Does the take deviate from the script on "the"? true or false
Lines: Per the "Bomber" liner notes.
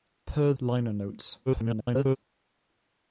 true